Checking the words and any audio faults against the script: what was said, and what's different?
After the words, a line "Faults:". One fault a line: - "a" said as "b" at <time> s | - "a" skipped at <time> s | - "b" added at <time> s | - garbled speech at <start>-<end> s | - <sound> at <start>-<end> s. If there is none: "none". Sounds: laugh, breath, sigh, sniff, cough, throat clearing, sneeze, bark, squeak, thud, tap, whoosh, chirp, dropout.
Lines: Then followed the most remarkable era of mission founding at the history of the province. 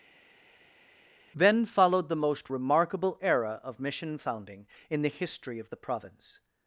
Then followed the most remarkable era of mission founding in the history of the province.
Faults:
- "at" said as "in" at 4.9 s